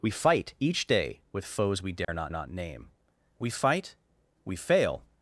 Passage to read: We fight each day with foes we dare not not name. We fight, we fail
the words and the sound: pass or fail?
fail